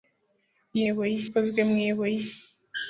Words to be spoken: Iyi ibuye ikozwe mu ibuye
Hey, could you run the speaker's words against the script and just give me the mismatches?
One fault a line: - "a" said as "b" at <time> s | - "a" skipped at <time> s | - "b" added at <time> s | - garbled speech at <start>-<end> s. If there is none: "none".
none